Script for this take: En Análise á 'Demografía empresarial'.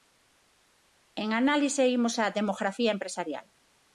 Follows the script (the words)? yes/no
no